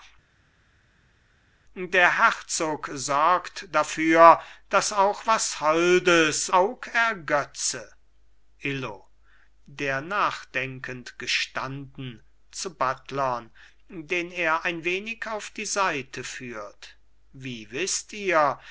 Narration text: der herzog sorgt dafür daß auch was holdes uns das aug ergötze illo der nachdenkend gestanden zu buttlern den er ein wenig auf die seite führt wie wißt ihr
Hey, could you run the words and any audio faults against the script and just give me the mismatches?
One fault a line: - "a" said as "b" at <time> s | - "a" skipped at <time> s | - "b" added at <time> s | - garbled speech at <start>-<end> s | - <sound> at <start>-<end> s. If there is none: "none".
- "uns das" skipped at 6.5 s